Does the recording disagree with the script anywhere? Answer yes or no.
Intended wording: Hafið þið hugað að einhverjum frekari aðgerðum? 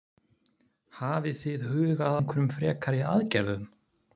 yes